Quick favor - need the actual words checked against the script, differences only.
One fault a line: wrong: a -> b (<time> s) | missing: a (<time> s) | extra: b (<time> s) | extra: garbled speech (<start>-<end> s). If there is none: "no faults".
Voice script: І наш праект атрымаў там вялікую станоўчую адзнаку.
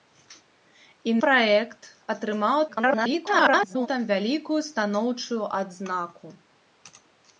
missing: наш (1.1 s)
extra: garbled speech (2.7-3.9 s)